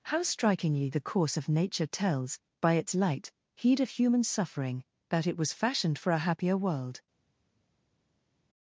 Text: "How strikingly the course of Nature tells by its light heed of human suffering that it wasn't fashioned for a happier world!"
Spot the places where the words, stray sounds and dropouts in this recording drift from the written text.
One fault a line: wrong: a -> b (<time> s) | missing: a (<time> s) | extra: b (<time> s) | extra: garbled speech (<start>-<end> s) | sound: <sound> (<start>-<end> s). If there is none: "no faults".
wrong: wasn't -> was (5.4 s)